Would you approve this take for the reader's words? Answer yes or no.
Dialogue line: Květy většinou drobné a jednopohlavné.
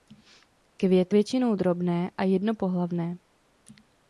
yes